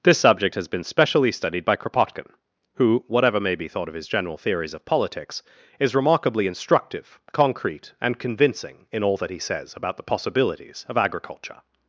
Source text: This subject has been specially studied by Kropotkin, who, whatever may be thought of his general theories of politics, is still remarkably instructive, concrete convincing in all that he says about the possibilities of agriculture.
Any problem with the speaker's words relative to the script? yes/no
yes